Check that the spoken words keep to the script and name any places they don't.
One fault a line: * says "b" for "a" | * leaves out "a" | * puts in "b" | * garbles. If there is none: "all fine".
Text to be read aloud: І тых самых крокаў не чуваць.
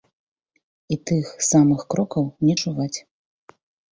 all fine